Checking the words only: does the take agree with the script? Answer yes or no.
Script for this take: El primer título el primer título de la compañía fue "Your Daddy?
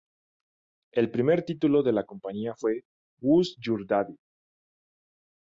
no